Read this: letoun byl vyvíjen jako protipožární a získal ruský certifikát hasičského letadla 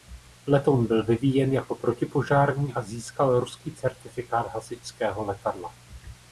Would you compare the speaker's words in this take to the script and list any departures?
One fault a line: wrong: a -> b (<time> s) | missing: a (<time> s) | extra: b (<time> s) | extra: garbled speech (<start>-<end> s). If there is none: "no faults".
no faults